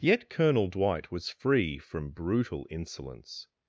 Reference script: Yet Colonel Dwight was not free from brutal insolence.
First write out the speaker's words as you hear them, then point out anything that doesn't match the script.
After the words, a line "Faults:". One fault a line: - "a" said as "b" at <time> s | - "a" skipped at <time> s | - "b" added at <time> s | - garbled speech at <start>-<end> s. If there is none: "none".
Yet Colonel Dwight was free from brutal insolence.
Faults:
- "not" skipped at 1.3 s